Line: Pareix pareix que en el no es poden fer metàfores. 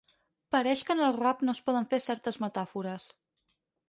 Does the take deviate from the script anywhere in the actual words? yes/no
yes